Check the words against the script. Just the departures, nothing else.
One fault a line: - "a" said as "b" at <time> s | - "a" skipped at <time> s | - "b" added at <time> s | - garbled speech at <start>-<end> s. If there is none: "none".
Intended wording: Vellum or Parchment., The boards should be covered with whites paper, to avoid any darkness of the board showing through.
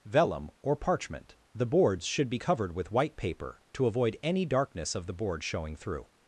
- "whites" said as "white" at 2.9 s